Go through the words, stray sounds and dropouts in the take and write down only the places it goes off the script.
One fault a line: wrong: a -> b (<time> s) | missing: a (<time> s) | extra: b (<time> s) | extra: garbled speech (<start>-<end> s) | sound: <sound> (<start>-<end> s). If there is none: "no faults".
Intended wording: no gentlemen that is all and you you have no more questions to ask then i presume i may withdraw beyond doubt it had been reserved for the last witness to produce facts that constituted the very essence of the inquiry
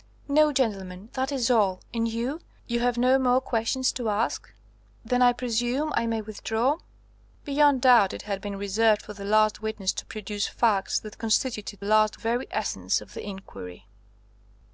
wrong: the -> last (11.8 s)